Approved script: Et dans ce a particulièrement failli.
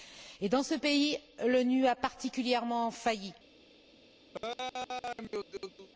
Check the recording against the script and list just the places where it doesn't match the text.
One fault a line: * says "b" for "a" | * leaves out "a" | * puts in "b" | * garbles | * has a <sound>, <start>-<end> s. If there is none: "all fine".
* puts in "pays l'ONU"
* has a laugh, 4.3-5.9 s